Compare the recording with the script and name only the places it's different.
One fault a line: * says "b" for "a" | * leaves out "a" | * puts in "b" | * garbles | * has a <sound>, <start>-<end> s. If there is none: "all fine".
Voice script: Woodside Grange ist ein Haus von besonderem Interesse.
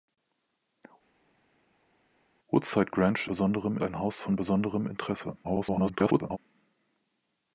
* says "besonderem" for "ist"
* garbles